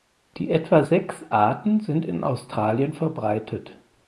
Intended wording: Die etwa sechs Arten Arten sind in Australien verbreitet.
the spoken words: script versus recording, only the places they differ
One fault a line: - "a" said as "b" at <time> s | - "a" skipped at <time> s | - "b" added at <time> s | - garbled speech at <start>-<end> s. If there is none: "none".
- "Arten" skipped at 1.8 s